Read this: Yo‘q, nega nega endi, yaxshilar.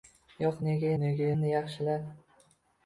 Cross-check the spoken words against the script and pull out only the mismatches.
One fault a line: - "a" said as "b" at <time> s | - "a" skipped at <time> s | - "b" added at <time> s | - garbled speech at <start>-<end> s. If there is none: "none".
none